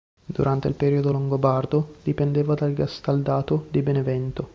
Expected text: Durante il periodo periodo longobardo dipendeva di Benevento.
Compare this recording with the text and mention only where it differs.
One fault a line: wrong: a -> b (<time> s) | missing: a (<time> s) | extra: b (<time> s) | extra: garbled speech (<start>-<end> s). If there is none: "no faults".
missing: periodo (1.1 s)
extra: dal gastaldato (2.5 s)